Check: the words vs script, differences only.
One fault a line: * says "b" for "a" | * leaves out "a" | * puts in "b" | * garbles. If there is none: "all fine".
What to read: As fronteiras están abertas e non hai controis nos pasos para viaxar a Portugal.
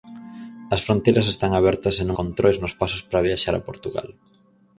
* leaves out "hai"